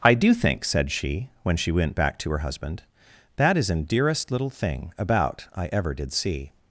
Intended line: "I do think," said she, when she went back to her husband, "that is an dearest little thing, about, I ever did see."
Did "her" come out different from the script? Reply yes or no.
no